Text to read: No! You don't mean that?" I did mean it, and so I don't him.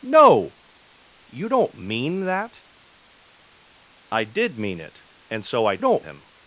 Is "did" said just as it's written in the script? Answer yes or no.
yes